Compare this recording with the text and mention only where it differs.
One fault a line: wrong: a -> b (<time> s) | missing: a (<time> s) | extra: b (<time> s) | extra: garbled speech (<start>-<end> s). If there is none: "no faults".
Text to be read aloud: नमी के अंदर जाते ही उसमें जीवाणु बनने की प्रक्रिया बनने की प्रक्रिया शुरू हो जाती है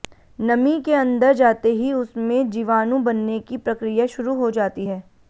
missing: बनने की प्रक्रिया (4.0 s)